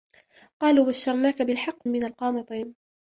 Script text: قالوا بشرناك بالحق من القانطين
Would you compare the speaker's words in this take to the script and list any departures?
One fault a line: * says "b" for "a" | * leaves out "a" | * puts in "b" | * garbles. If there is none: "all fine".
all fine